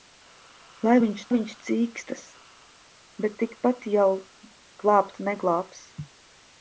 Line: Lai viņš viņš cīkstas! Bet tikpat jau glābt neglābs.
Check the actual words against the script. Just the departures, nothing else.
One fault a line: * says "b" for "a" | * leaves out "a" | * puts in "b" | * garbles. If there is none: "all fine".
all fine